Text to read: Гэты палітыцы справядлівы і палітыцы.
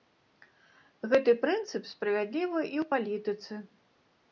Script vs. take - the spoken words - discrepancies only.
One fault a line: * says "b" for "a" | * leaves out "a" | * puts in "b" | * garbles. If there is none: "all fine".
* says "прынцып" for "палітыцы"
* puts in "ў"